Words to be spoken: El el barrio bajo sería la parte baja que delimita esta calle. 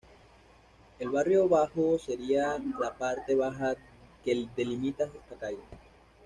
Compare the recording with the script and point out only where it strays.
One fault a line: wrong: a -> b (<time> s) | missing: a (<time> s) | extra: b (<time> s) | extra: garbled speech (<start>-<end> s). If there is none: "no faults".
missing: el (1.1 s)